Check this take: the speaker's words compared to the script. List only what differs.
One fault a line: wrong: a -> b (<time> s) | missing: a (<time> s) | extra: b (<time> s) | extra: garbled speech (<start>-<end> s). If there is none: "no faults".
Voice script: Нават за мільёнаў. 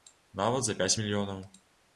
extra: пяць (0.8 s)